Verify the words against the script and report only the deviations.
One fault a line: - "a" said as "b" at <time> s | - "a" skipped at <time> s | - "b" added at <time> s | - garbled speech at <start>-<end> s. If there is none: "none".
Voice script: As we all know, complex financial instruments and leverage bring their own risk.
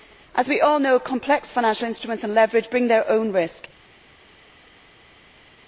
none